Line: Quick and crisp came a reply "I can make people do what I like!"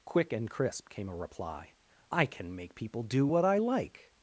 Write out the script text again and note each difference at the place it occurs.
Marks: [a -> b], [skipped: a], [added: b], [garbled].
Quick and crisp came a reply "I can make people do what I like!"